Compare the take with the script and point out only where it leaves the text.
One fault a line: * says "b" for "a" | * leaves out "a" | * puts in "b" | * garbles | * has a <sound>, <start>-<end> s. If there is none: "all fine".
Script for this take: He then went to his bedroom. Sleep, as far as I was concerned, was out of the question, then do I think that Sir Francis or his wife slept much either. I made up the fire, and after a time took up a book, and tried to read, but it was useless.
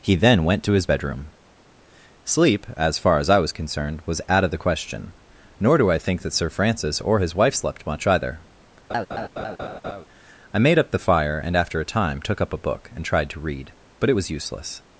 * says "nor" for "then"
* has a laugh, 8.9-10.1 s